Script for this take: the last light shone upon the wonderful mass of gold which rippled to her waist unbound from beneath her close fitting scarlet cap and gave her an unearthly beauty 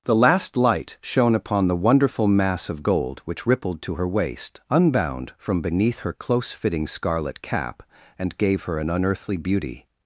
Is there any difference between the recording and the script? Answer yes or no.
no